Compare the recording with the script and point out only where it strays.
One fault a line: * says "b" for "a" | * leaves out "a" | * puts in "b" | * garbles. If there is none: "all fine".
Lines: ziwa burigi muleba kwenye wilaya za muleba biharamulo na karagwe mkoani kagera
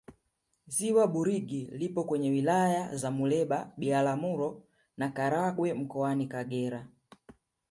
* says "lipo" for "muleba"